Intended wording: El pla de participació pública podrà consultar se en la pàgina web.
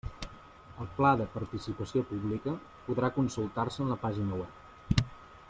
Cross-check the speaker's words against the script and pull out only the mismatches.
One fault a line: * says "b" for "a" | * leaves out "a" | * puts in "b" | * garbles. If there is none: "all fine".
all fine